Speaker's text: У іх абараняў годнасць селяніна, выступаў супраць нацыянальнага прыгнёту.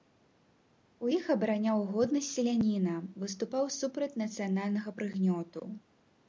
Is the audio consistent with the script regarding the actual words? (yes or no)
yes